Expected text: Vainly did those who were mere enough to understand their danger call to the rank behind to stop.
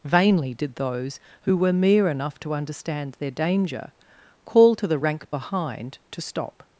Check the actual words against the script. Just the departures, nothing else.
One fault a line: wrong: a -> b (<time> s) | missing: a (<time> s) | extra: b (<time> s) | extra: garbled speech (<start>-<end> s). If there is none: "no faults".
no faults